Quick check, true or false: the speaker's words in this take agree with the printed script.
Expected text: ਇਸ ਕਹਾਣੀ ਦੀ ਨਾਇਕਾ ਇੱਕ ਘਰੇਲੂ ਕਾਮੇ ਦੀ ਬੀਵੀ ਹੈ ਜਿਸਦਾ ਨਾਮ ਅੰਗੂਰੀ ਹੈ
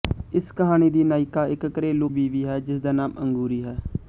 false